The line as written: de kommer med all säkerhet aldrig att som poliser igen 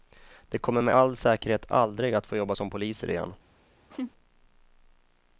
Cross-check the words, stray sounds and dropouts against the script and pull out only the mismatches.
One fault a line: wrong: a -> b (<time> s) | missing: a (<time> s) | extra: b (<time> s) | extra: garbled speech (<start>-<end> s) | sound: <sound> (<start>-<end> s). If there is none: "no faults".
extra: få jobba (2.3 s)
sound: laugh (3.9-4.1 s)